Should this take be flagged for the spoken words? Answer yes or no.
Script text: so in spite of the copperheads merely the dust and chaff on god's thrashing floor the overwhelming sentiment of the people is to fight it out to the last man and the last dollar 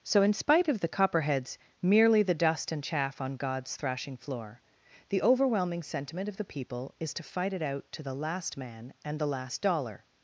no